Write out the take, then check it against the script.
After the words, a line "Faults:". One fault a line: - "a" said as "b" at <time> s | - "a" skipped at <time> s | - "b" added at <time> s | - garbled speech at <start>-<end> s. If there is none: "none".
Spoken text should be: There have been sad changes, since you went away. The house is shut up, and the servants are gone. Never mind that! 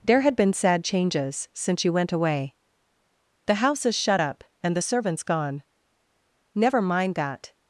There had been sad changes, since you went away. The house is shut up, and the servants gone. Never mind that!
Faults:
- "have" said as "had" at 0.2 s
- "are" skipped at 5.2 s